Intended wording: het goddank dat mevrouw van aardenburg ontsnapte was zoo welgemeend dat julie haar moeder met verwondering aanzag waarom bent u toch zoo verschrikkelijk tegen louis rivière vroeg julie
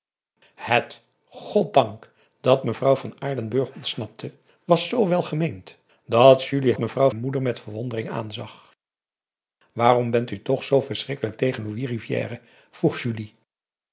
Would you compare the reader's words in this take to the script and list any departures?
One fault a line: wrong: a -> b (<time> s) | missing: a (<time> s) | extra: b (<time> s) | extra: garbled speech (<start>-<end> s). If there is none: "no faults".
wrong: haar -> mevrouw (6.8 s)